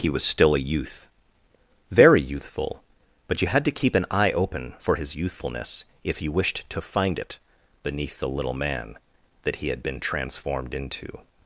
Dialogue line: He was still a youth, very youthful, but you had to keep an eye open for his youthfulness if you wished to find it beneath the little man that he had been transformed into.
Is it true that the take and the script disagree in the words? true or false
false